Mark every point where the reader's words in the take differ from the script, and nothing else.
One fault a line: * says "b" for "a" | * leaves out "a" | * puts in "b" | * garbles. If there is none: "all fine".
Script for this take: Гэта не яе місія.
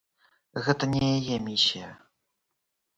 all fine